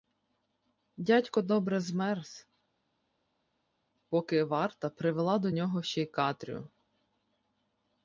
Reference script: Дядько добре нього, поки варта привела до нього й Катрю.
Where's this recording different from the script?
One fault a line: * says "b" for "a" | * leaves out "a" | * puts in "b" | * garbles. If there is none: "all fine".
* says "змерз" for "нього"
* puts in "ще"